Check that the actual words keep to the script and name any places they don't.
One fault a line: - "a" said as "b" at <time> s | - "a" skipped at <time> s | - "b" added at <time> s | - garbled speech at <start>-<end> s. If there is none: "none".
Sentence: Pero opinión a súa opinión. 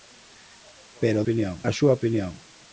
none